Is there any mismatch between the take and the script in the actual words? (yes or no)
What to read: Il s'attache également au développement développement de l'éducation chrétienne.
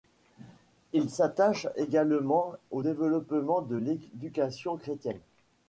yes